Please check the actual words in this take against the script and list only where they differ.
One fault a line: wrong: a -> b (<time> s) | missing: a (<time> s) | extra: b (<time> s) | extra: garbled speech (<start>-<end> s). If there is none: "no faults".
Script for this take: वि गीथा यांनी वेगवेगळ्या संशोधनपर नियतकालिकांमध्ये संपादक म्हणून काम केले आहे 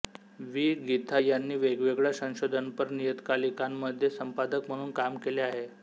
no faults